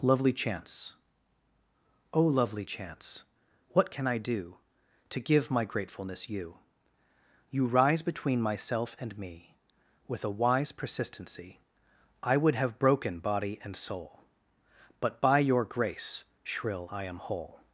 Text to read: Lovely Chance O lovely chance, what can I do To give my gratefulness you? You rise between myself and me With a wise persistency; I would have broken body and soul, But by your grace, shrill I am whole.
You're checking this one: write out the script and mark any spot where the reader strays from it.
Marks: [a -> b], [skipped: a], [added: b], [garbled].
Lovely Chance O lovely chance, what can I do To give my gratefulness you? You rise between myself and me With a wise persistency; I would have broken body and soul, But by your grace, shrill I am whole.